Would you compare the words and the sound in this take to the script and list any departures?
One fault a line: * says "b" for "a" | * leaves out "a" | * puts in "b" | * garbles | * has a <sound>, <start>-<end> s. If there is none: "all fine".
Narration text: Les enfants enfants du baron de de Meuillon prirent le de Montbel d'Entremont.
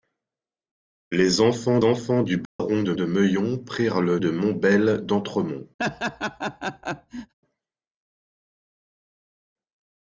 * has a dropout, 2.4-2.6 s
* has a laugh, 5.8-7.3 s